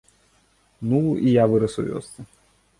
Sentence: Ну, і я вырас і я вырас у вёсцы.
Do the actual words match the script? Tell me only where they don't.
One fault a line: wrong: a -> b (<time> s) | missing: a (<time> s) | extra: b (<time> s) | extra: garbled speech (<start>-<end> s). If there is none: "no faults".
missing: і я вырас (1.8 s)